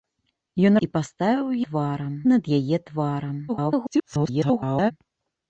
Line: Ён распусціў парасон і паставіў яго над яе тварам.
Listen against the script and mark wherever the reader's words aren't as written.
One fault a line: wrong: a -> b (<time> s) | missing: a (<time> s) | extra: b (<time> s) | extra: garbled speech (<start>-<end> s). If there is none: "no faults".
missing: распусціў парасон (0.8 s)
wrong: яго -> тварам (1.7 s)
extra: garbled speech (3.5-4.9 s)